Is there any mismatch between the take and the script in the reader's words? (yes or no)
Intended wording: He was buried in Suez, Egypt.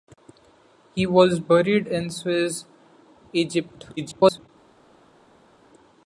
yes